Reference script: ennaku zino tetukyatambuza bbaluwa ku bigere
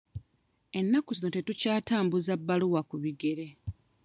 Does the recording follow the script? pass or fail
pass